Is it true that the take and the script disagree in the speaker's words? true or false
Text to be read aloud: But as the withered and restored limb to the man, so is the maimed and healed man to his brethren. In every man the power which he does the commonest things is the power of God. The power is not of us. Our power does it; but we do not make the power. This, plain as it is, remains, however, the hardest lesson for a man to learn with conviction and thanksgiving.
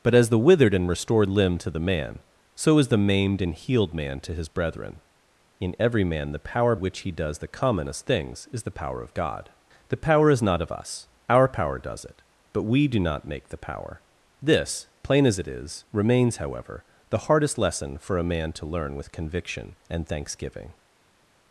false